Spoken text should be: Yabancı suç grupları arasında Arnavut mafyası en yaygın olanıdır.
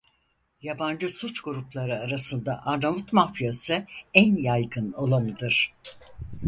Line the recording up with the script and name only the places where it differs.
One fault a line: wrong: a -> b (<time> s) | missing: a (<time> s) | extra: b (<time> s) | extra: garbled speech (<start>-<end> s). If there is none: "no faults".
no faults